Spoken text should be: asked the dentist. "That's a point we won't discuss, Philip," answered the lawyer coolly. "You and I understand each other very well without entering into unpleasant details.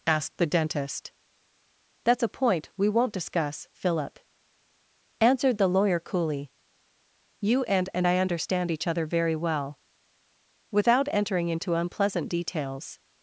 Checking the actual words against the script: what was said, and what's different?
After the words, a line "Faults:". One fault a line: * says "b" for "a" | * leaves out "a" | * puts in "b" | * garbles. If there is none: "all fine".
asked the dentist. "That's a point we won't discuss, Philip," answered the lawyer coolly. "You and and I understand each other very well without entering into unpleasant details.
Faults:
* puts in "and"